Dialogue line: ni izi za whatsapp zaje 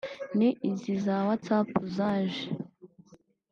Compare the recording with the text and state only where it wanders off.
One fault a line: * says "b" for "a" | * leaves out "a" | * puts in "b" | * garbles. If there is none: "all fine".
all fine